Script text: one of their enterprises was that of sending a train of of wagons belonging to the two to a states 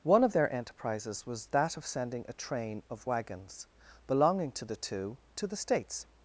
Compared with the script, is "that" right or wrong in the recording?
right